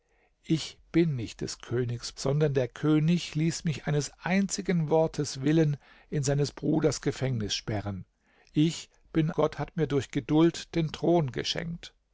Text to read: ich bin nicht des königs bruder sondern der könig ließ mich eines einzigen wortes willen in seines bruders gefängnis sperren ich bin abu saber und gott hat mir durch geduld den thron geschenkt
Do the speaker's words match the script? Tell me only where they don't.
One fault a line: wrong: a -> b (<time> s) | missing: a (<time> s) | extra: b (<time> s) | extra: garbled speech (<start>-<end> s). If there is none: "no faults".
missing: bruder (2.1 s)
missing: abu saber und (9.3 s)